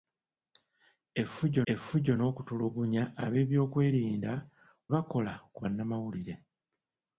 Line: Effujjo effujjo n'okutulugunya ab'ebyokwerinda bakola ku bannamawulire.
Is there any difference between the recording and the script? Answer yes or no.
no